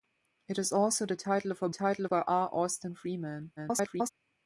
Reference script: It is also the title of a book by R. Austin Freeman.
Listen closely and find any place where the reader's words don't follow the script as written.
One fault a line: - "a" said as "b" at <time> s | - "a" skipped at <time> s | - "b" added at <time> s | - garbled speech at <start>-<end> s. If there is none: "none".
- "book" said as "title" at 1.7 s
- garbled speech at 3.6-4.1 s